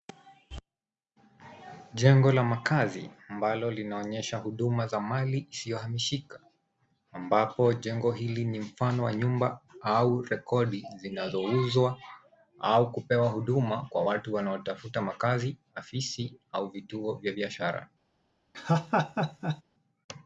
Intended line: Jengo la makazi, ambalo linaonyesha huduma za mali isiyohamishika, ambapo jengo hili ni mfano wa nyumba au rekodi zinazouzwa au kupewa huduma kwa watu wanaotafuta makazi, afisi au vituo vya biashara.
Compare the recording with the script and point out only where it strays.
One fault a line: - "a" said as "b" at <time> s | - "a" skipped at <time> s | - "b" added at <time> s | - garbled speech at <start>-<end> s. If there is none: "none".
none